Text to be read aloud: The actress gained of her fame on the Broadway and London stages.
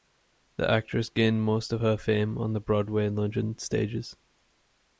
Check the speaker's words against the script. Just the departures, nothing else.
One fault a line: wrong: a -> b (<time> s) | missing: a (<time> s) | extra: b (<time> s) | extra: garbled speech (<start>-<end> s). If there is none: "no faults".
extra: most (1.4 s)